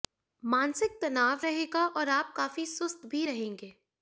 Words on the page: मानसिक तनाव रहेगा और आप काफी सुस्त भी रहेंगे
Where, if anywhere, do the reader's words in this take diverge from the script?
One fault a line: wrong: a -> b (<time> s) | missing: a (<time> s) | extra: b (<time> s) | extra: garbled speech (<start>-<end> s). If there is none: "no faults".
no faults